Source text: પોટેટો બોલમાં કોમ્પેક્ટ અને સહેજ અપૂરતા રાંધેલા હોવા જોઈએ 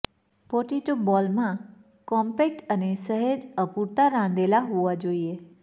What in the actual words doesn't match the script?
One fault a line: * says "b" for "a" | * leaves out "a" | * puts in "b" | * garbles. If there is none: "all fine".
all fine